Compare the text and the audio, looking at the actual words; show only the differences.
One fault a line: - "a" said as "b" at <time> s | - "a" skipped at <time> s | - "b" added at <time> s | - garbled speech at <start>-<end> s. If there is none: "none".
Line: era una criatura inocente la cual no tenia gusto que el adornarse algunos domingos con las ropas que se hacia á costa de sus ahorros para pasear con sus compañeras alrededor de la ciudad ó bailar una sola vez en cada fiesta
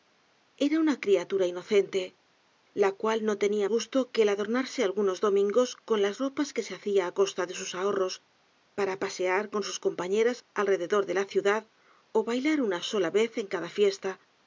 none